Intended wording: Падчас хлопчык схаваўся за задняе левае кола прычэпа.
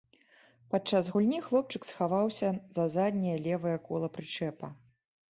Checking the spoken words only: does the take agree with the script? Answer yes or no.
no